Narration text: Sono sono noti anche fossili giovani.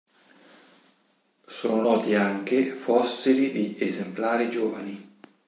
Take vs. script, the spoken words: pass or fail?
fail